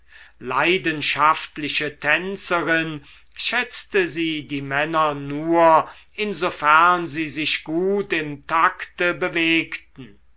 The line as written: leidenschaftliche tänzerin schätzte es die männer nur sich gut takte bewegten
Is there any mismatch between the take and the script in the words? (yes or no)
yes